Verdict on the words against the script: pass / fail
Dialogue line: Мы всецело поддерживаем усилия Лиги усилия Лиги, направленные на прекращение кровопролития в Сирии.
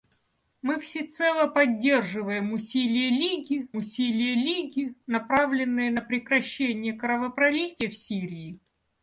pass